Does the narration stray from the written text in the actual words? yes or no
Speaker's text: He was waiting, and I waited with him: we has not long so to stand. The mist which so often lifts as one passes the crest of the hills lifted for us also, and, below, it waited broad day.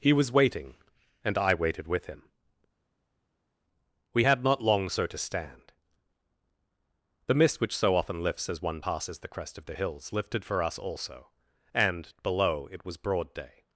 yes